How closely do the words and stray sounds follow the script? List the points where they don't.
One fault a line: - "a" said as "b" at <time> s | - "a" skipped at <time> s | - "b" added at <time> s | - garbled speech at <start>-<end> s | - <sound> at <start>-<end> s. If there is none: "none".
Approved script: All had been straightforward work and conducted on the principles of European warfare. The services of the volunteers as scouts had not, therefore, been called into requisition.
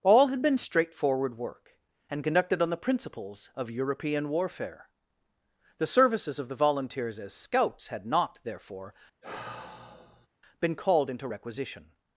- sigh at 9.2-10.3 s